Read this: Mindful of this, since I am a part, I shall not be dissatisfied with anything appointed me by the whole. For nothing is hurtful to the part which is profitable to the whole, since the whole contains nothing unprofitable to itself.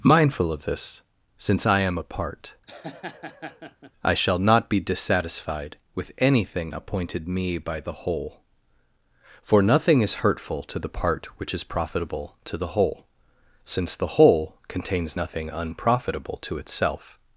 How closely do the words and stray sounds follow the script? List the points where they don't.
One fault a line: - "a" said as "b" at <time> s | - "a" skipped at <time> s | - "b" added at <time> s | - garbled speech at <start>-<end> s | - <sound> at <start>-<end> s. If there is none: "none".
- laugh at 2.7-3.9 s